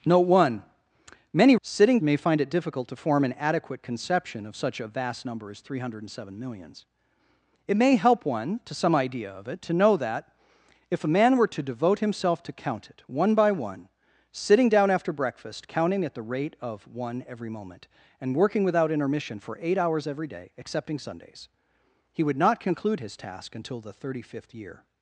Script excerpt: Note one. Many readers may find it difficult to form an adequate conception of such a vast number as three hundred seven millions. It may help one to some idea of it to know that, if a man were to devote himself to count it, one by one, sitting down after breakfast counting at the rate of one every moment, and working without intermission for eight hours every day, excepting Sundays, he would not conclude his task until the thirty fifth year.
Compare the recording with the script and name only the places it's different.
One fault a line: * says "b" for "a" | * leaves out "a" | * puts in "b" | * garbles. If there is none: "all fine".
* says "sitting" for "readers"